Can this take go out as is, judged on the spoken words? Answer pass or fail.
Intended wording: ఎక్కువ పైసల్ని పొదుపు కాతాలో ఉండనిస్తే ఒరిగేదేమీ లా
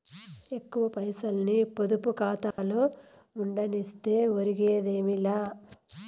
pass